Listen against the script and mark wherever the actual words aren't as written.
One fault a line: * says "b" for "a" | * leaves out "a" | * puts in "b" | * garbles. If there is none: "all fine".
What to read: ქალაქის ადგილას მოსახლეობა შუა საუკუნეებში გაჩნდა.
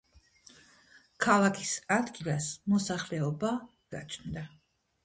* leaves out "შუა საუკუნეებში"